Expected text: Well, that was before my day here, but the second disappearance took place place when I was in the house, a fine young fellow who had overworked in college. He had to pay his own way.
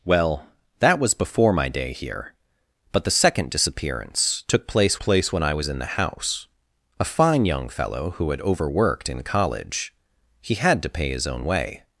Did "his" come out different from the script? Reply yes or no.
no